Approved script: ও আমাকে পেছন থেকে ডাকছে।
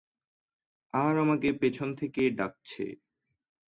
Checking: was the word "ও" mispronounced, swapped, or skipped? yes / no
yes